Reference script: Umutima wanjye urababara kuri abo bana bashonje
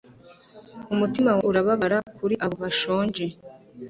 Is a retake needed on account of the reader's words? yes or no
yes